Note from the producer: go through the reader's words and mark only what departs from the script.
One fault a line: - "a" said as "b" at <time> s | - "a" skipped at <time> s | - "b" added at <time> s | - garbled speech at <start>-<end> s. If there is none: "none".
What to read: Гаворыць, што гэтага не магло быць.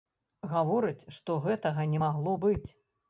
none